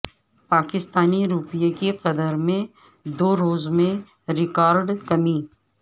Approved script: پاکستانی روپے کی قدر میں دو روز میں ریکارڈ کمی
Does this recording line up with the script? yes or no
yes